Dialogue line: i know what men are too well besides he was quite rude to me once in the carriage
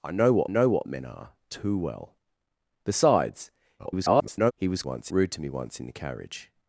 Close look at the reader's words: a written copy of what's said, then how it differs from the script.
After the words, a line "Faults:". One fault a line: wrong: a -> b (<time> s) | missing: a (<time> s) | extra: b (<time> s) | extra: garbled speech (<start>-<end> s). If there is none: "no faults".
i know what know what men are too well besides [garbled] he was once rude to me once in the carriage
Faults:
extra: know what (0.5 s)
extra: garbled speech (3.8-4.5 s)
wrong: quite -> once (4.8 s)